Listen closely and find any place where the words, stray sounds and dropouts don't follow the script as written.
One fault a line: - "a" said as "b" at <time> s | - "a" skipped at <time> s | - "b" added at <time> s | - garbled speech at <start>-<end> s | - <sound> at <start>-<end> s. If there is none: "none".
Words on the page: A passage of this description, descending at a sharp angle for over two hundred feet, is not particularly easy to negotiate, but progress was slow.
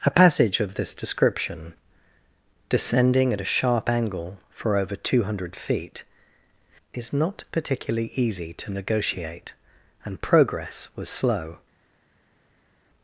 - "but" said as "and" at 10.1 s